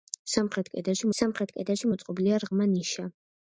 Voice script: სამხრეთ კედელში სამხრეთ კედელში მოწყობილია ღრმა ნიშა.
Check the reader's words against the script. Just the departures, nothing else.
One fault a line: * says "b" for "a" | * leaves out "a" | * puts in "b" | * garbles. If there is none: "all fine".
all fine